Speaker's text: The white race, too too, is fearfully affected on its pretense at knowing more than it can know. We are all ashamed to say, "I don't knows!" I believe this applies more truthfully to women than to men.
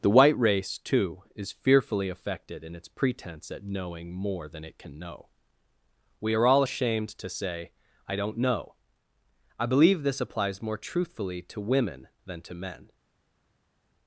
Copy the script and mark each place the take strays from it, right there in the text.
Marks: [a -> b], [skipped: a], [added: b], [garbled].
The white race, too [skipped: too,] is fearfully affected [on -> in] its pretense at knowing more than it can know. We are all ashamed to say, "I don't [knows!" -> know] I believe this applies more truthfully to women than to men.